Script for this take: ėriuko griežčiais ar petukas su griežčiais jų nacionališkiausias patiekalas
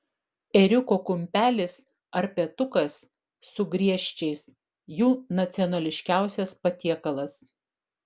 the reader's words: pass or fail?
fail